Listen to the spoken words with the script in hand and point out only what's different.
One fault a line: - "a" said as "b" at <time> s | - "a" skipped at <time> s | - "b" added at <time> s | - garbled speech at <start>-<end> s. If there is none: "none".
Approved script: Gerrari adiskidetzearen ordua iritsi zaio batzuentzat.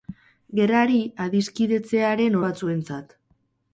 - "ordua iritsi zaio" skipped at 2.4 s